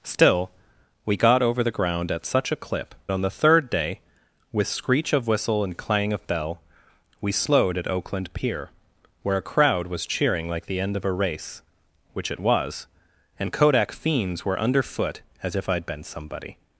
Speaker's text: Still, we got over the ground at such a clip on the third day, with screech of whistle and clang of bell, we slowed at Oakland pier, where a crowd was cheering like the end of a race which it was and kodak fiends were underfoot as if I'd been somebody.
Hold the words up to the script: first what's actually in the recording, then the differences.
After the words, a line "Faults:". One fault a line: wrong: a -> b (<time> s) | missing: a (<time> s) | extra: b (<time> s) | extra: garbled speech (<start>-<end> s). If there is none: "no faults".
Still, we got over the ground at such a clip on the third day, with screech of whistle and clang of bell, we slowed at Oakland pier, where a crowd was cheering like the end of a race which it was and kodak fiends were underfoot as if I'd been somebody.
Faults:
no faults